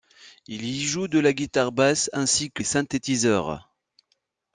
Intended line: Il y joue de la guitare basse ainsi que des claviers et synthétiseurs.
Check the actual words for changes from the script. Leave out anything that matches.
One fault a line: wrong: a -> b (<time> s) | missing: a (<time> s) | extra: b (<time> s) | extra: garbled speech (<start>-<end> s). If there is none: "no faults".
missing: des claviers (2.6 s)